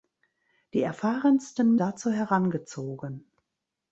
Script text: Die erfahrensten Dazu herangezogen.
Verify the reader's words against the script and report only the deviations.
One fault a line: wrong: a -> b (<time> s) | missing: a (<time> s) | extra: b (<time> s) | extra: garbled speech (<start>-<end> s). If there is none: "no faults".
no faults